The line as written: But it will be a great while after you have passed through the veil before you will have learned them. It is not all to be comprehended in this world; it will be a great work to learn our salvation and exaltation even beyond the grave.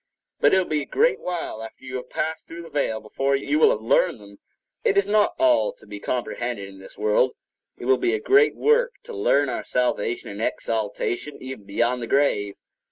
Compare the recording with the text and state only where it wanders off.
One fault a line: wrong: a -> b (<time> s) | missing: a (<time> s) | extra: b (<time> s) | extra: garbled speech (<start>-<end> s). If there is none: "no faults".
no faults